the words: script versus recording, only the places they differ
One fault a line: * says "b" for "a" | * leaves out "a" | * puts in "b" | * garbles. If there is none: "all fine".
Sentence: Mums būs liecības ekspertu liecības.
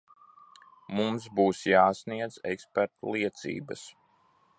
* says "jāsniedz" for "liecības"